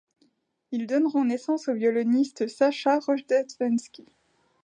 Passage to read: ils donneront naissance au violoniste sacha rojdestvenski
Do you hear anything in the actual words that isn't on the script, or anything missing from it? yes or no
no